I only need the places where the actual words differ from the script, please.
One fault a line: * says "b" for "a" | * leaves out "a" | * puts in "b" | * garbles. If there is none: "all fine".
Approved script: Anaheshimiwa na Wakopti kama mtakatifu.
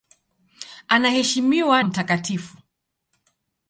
* leaves out "na Wakopti kama"